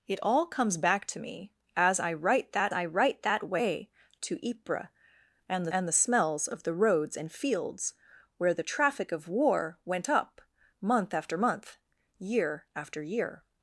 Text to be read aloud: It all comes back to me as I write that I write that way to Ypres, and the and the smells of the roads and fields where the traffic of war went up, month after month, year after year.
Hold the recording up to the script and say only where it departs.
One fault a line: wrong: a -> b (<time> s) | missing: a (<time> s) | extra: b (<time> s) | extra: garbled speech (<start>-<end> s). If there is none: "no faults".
no faults